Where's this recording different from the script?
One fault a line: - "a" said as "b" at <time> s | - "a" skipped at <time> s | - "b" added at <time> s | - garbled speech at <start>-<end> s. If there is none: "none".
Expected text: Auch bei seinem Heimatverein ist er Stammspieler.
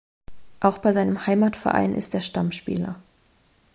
none